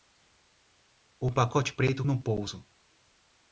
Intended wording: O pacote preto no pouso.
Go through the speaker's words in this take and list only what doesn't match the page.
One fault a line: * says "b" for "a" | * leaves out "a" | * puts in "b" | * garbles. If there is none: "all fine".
all fine